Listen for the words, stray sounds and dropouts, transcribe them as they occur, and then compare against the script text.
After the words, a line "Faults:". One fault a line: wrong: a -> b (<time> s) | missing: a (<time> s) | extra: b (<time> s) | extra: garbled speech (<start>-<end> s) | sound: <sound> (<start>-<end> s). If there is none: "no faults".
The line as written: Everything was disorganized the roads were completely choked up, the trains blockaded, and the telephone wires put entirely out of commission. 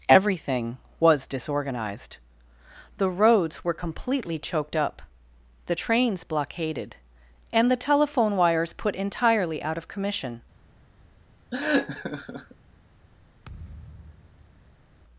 Everything was disorganized the roads were completely choked up, the trains blockaded, and the telephone wires put entirely out of commission.
Faults:
sound: laugh (11.5-12.6 s)
sound: thud (13.4-14.9 s)